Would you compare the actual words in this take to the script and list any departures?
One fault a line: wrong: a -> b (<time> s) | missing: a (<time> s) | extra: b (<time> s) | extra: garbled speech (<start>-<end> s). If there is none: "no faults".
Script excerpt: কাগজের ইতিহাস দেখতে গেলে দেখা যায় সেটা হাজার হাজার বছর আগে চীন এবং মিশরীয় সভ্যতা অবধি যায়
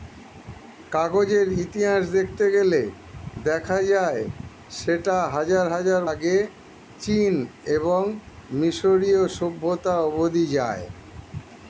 missing: বছর (6.0 s)